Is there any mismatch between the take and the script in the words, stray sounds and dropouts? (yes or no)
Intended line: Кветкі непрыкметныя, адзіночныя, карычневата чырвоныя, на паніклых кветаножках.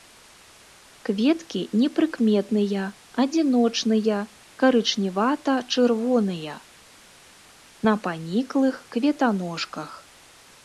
no